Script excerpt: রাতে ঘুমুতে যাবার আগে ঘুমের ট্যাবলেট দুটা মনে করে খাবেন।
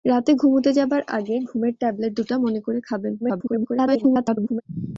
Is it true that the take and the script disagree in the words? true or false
true